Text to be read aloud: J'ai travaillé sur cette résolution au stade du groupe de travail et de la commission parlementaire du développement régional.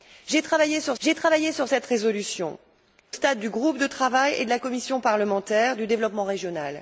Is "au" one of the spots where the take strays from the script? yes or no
yes